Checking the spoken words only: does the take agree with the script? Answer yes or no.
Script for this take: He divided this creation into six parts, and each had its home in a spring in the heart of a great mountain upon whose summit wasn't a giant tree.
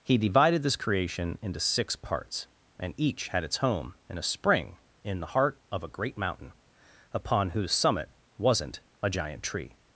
yes